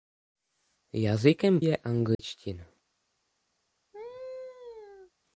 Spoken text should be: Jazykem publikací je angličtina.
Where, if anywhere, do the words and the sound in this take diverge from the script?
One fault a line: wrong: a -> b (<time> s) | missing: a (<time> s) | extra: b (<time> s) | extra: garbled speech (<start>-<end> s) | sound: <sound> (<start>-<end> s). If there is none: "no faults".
missing: publikací (1.6 s)
sound: dropout (2.1-2.2 s)
sound: laugh (3.9-5.1 s)